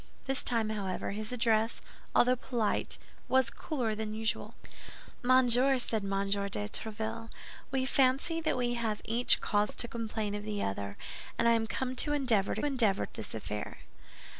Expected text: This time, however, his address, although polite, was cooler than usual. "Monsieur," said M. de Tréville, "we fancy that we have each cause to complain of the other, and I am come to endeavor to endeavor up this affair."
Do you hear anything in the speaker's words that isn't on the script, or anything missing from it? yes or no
no